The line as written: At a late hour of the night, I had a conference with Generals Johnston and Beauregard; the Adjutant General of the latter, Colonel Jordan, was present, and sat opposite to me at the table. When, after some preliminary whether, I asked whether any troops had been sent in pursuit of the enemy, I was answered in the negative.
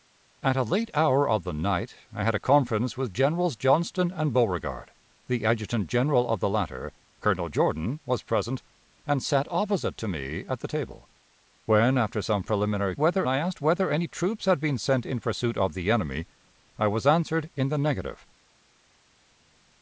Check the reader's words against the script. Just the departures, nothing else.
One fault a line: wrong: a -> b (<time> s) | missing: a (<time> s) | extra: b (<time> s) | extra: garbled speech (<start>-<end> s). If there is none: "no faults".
no faults